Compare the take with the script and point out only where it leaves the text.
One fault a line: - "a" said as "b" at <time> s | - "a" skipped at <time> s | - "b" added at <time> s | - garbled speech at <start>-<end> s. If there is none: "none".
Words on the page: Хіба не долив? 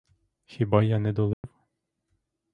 - "я" added at 0.8 s